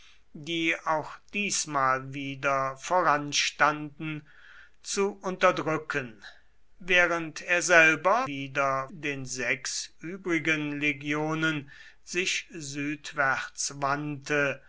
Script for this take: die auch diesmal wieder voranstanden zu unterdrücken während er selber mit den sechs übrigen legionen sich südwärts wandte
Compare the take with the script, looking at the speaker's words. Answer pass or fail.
fail